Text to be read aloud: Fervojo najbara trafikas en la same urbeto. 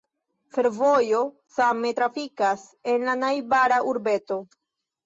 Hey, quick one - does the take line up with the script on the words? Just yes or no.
no